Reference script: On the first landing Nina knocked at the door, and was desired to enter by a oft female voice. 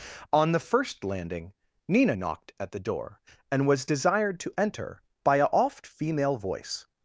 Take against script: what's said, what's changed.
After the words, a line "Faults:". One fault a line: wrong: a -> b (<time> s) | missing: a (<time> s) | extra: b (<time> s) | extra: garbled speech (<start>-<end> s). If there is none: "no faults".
On the first landing Nina knocked at the door, and was desired to enter by a oft female voice.
Faults:
no faults